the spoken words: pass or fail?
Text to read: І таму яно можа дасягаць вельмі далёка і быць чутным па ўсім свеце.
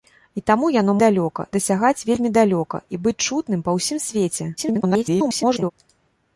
fail